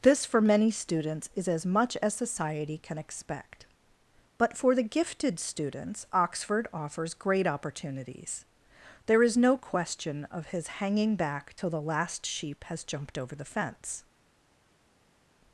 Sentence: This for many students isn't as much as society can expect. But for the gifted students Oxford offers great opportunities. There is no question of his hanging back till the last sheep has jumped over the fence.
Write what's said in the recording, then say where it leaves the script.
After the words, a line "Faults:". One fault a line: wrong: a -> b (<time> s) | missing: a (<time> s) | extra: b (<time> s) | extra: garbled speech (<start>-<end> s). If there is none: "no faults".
This for many students is as much as society can expect. But for the gifted students Oxford offers great opportunities. There is no question of his hanging back till the last sheep has jumped over the fence.
Faults:
wrong: isn't -> is (1.4 s)